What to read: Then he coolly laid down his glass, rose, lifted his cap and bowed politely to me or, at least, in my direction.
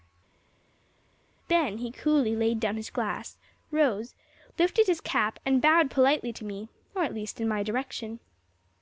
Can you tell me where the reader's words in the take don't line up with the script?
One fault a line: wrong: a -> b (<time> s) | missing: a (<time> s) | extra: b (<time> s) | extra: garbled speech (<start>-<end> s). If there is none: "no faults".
no faults